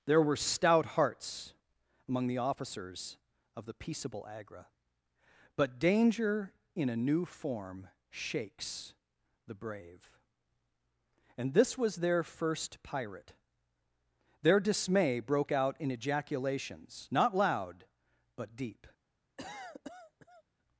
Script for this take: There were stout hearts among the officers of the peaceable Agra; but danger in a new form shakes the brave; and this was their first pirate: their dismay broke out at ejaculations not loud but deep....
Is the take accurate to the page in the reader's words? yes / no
no